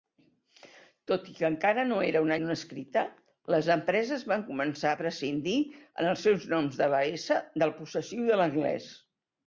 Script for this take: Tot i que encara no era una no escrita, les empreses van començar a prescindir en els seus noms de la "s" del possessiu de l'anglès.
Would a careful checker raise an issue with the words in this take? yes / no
no